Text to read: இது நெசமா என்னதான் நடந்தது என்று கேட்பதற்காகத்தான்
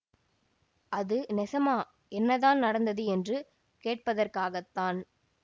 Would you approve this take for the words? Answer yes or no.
no